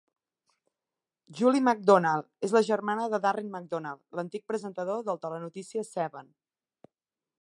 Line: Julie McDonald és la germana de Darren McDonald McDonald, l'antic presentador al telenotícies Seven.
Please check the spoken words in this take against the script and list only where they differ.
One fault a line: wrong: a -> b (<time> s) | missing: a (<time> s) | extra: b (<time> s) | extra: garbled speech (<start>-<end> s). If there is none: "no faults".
missing: McDonald (4.0 s)
wrong: al -> del (5.1 s)